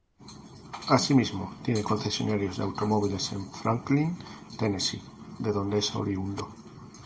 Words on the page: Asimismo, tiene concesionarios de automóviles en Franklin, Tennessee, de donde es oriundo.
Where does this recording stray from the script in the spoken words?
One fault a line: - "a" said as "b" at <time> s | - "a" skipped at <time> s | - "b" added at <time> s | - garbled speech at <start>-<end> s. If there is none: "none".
none